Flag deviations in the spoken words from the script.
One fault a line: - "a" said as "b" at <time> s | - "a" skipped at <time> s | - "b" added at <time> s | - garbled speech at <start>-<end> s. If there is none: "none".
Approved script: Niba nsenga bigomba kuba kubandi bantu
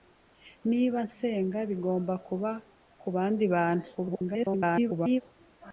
- garbled speech at 3.9-5.2 s